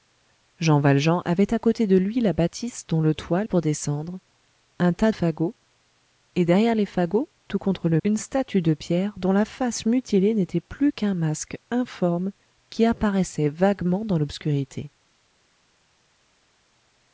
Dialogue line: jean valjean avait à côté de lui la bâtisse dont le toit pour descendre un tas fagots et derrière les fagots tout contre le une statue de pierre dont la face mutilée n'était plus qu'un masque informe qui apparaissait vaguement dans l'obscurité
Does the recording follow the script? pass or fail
pass